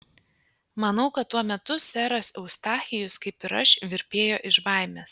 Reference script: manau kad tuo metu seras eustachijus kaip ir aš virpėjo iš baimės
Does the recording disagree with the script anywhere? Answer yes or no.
no